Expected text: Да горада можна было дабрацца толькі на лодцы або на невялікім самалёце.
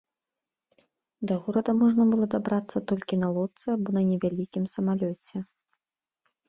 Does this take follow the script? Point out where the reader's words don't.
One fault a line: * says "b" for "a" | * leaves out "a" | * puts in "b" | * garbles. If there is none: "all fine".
all fine